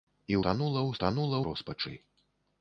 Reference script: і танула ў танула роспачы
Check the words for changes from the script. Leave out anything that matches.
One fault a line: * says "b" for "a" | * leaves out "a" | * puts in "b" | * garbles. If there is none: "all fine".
all fine